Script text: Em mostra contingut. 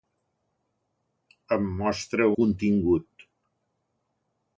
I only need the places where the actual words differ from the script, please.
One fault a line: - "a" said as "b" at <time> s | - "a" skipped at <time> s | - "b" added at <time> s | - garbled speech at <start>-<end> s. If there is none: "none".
none